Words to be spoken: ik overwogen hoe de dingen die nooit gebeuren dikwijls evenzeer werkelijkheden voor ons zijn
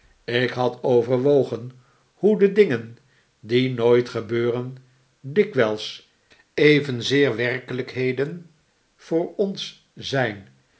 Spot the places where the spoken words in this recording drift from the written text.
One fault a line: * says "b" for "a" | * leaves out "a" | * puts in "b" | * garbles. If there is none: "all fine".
* puts in "had"